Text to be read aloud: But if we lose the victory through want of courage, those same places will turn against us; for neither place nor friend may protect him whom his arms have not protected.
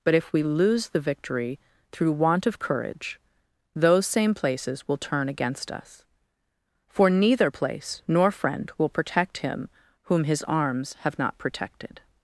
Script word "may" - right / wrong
wrong